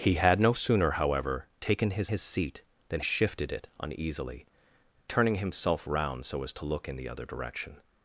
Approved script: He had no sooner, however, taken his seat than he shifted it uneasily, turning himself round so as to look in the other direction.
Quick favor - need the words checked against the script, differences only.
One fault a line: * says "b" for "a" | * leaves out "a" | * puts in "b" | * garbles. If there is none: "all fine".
* puts in "his"
* leaves out "he"